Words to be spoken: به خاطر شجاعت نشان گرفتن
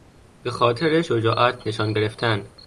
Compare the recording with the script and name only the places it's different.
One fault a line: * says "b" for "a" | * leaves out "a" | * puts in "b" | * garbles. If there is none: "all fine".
all fine